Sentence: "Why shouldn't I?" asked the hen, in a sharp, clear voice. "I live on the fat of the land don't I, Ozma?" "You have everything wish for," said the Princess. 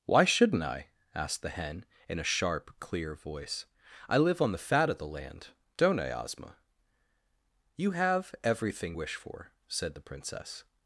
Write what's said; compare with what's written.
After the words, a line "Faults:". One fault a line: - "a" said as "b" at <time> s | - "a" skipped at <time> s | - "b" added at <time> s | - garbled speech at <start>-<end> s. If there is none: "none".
"Why shouldn't I?" asked the hen, in a sharp, clear voice. "I live on the fat of the land don't I, Ozma?" "You have everything wish for," said the Princess.
Faults:
none